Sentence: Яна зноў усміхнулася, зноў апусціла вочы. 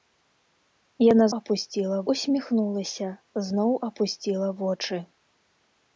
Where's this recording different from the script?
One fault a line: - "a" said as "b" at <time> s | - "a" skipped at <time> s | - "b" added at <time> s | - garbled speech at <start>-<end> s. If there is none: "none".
- "зноў" said as "апусціла" at 1.4 s